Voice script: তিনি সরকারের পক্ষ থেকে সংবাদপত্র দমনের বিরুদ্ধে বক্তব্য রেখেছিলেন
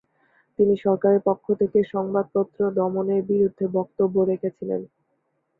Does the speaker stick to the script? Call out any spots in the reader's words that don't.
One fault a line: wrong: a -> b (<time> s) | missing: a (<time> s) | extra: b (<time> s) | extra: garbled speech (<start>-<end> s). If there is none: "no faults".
no faults